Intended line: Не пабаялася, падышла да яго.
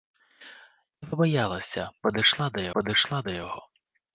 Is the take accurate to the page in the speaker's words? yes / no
no